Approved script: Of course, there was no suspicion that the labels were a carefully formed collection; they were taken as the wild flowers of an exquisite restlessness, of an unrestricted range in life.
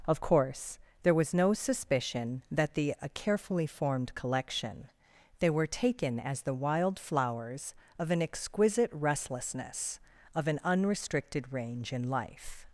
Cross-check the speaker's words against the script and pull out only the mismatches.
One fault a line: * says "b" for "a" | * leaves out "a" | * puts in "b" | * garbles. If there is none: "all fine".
* leaves out "labels were"